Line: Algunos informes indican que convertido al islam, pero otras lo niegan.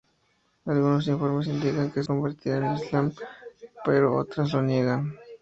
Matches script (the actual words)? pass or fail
pass